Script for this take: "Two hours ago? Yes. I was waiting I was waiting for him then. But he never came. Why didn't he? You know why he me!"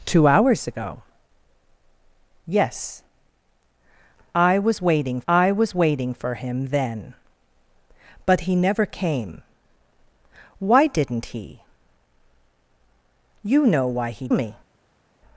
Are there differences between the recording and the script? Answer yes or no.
no